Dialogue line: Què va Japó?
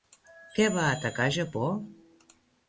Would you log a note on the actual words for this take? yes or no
yes